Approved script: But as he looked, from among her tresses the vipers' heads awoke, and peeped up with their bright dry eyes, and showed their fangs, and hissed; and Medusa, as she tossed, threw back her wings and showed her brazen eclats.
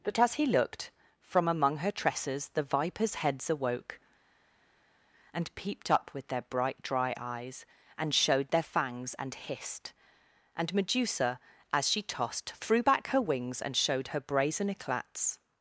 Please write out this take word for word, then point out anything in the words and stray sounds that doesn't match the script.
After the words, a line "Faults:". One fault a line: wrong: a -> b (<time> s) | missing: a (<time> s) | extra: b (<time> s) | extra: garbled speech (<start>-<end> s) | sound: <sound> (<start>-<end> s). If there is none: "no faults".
But as he looked, from among her tresses the vipers' heads awoke, and peeped up with their bright dry eyes, and showed their fangs, and hissed; and Medusa, as she tossed, threw back her wings and showed her brazen eclats.
Faults:
no faults